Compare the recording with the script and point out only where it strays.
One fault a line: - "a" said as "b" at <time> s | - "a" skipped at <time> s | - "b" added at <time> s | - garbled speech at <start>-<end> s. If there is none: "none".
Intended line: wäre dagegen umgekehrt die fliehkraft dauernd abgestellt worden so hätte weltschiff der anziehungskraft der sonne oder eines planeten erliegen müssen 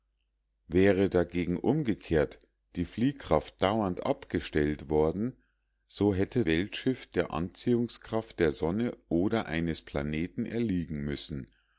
none